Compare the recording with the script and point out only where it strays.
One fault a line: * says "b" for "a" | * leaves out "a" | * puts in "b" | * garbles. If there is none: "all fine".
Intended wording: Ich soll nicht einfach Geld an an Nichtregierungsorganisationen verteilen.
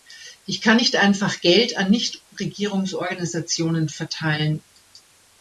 * says "kann" for "soll"
* leaves out "an"